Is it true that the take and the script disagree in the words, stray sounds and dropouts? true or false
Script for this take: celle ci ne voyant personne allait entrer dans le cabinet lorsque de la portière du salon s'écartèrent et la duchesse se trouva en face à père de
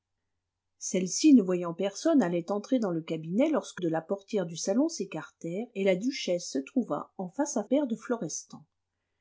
false